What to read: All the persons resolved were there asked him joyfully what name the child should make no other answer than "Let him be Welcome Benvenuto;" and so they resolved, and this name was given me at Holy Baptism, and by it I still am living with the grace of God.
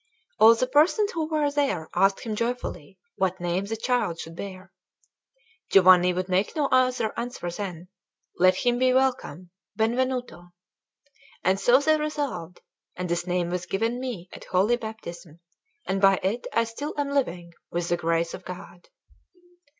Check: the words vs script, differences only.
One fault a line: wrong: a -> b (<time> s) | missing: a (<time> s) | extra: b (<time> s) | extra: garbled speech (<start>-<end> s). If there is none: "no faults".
wrong: resolved -> who (1.1 s)
extra: bear Giovanni would (4.3 s)